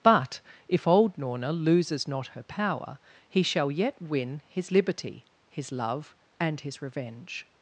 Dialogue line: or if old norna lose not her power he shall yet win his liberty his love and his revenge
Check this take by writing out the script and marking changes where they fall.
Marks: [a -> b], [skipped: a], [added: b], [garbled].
[or -> but] if old norna [lose -> loses] not her power he shall yet win his liberty his love and his revenge